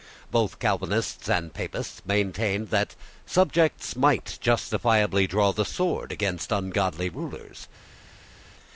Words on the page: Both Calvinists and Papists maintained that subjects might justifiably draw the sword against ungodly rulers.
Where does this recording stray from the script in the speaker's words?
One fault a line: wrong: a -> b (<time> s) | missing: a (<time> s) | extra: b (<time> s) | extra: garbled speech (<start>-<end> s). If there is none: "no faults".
no faults